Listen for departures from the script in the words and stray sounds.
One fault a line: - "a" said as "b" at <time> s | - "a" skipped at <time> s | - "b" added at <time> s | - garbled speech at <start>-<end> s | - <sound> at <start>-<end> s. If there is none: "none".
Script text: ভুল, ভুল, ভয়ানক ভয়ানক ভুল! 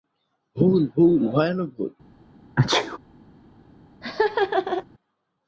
- "ভয়ানক" skipped at 1.7 s
- sneeze at 2.6-3.0 s
- laugh at 4.0-4.8 s